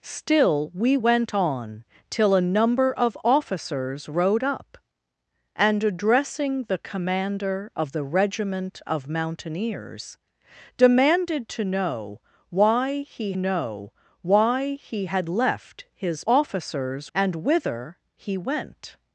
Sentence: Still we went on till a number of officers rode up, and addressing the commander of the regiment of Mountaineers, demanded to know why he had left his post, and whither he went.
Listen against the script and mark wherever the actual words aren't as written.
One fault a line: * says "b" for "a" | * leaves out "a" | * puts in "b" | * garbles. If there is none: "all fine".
* puts in "know why he"
* says "officers" for "post"